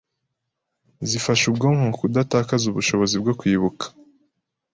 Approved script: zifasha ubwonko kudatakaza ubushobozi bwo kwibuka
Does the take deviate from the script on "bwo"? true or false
false